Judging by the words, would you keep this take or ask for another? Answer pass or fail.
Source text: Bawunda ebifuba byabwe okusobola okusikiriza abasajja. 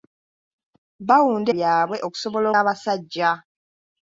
fail